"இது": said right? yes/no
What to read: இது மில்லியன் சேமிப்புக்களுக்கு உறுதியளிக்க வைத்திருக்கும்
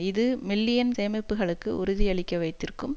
yes